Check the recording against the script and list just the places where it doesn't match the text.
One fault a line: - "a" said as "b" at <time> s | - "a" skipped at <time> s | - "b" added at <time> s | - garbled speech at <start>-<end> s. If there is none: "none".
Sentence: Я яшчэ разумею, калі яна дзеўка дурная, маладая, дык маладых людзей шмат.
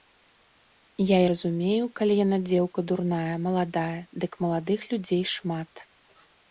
- "яшчэ" skipped at 1.2 s